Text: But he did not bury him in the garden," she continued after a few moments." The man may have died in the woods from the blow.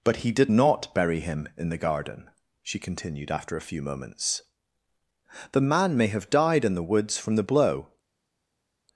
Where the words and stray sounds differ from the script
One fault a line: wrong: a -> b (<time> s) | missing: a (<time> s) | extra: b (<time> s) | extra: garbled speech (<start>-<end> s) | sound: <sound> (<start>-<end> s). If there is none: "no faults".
no faults